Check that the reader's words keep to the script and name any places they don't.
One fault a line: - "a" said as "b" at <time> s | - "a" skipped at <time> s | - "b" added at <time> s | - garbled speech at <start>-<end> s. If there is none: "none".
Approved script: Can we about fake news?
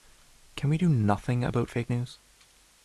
- "do nothing" added at 0.8 s